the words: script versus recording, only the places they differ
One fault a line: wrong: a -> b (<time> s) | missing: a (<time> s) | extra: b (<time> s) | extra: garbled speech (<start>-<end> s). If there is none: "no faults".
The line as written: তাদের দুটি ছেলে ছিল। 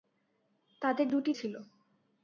missing: ছেলে (1.3 s)